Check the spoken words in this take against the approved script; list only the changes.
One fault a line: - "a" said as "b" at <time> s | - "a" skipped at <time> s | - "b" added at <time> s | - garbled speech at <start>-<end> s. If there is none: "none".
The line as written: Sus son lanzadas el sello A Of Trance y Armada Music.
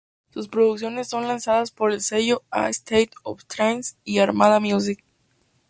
- "producciones" added at 0.5 s
- "por" added at 1.7 s
- "State" added at 2.7 s